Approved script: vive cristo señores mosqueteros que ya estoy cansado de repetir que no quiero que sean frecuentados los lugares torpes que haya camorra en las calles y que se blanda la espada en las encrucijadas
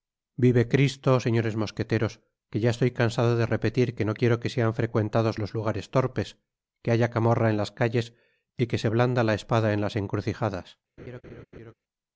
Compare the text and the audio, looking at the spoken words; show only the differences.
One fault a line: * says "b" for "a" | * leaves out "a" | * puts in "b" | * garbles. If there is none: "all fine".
all fine